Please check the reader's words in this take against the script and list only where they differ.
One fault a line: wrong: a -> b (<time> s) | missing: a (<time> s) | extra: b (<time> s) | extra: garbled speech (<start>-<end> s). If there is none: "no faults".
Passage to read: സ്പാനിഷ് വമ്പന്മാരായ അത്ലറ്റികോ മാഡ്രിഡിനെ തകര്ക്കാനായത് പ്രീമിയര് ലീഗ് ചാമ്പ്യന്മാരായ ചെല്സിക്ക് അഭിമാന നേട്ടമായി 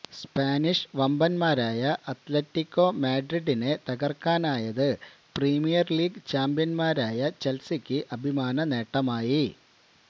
no faults